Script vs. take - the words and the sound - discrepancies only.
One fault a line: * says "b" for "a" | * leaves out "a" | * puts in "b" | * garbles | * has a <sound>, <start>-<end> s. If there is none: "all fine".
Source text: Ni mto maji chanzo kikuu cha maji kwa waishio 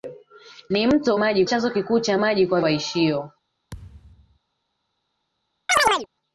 * has a thud, 3.7-4.4 s
* has a chirp, 5.7-6.1 s